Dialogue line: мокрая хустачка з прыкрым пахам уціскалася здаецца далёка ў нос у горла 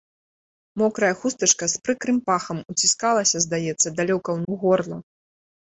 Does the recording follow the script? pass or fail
fail